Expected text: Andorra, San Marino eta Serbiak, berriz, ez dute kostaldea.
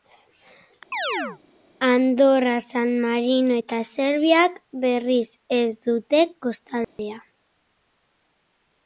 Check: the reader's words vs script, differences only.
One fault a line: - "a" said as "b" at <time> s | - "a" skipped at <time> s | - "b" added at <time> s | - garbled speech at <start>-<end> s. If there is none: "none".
none